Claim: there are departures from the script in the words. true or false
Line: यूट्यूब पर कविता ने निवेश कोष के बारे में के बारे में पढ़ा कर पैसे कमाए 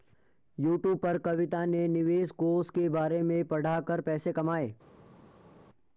true